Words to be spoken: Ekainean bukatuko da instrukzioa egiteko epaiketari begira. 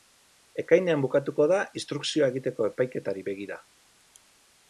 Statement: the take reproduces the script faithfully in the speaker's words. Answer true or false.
true